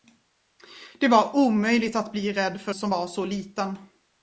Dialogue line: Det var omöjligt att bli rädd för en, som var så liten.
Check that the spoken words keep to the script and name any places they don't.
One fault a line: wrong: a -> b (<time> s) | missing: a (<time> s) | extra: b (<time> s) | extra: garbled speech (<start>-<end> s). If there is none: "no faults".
missing: en (2.8 s)